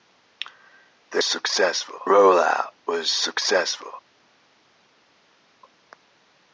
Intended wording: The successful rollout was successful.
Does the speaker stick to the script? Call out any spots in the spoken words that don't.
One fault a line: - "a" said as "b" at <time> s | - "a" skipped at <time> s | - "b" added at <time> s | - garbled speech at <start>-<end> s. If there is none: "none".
none